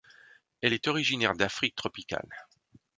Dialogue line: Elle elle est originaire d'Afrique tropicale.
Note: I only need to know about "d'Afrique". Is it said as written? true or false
true